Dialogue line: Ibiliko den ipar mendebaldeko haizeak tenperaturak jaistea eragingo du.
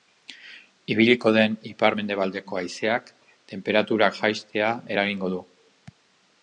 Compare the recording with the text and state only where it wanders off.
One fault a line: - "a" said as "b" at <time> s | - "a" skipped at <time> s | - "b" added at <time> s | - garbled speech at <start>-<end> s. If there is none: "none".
none